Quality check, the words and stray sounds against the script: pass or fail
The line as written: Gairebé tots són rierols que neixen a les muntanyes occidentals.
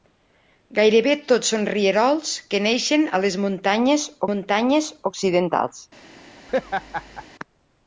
fail